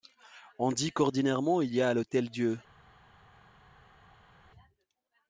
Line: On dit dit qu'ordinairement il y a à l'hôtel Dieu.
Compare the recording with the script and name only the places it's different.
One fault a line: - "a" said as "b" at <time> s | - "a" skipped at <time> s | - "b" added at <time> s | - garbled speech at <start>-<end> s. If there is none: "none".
- "dit" skipped at 0.9 s